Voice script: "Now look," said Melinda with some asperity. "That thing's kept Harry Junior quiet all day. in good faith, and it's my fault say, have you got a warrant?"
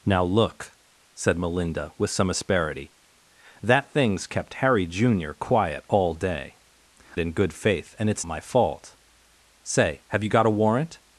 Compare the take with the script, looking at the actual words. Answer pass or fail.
pass